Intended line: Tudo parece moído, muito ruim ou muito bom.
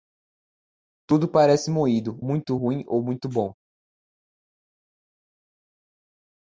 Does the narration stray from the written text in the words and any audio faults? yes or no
no